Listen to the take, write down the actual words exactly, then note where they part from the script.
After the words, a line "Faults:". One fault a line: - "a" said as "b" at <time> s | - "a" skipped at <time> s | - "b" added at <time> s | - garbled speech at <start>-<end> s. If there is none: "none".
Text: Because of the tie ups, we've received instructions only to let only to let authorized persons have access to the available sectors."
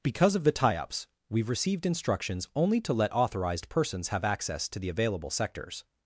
Because of the tie ups, we've received instructions only to let authorized persons have access to the available sectors."
Faults:
- "only to let" skipped at 3.1 s